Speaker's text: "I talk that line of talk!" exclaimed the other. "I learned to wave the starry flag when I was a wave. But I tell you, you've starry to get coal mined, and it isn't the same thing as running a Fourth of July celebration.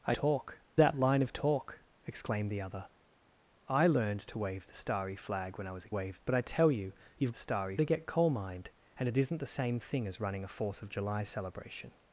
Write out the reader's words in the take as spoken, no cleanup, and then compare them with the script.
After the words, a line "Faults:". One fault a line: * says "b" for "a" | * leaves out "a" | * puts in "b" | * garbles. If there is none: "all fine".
"I talk that line of talk!" exclaimed the other. "I learned to wave the starry flag when I was a wave. But I tell you, you've starry to get coal mined, and it isn't the same thing as running a Fourth of July celebration.
Faults:
all fine